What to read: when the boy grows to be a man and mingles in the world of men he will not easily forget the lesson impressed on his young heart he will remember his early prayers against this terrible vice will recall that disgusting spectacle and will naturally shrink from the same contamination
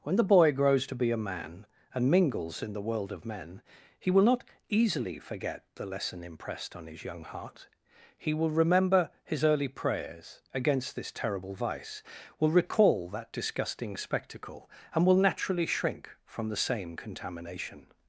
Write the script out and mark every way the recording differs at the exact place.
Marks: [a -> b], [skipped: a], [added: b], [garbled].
when the boy grows to be a man and mingles in the world of men he will not easily forget the lesson impressed on his young heart he will remember his early prayers against this terrible vice will recall that disgusting spectacle and will naturally shrink from the same contamination